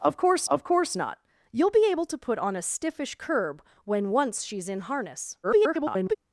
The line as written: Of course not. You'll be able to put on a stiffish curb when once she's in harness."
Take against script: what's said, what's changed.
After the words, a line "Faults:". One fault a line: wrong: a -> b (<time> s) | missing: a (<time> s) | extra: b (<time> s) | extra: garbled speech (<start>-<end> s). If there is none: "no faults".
Of course of course not. You'll be able to put on a stiffish curb when once she's in harness." [garbled]
Faults:
extra: of course (0.5 s)
extra: garbled speech (5.4-6.2 s)